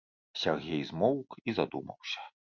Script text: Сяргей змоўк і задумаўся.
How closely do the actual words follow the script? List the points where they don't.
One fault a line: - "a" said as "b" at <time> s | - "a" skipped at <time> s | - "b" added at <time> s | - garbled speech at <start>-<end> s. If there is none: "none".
none